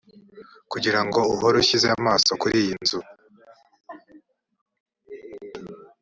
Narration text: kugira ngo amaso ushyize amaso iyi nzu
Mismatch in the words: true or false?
true